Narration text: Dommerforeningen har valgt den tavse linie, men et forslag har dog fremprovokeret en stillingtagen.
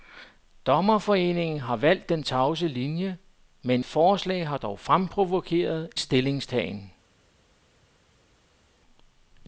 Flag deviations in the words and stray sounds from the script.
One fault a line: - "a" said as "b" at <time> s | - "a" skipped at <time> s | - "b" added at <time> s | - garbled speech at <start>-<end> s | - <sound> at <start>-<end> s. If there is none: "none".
- "et" skipped at 3.8 s
- "en" skipped at 5.9 s